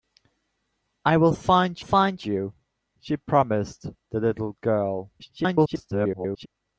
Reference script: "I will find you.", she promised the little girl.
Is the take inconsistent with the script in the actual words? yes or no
yes